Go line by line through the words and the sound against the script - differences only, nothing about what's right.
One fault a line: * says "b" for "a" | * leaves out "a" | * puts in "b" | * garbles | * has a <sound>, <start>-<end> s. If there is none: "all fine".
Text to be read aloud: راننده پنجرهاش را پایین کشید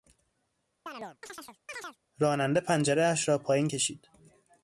* has a chirp, 0.9-2.0 s